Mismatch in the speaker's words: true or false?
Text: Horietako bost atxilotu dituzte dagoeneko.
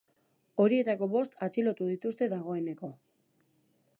false